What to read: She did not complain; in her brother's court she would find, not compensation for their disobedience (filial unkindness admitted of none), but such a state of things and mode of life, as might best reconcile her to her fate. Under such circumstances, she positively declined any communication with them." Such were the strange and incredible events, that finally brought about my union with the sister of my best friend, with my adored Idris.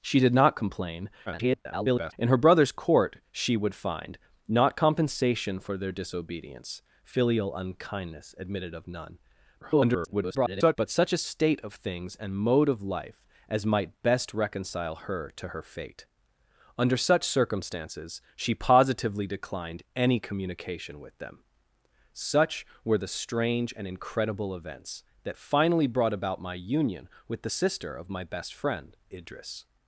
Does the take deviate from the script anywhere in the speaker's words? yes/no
yes